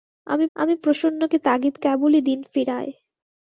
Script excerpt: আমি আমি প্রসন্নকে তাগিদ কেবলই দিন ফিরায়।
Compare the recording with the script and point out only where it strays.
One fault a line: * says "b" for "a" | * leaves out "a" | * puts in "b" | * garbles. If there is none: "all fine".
all fine